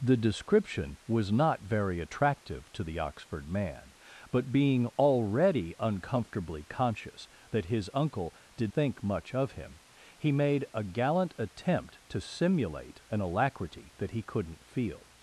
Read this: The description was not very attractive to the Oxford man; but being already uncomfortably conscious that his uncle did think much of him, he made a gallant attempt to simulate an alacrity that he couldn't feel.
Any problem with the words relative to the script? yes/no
no